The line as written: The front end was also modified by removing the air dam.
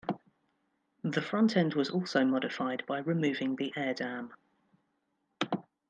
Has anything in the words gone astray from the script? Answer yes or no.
no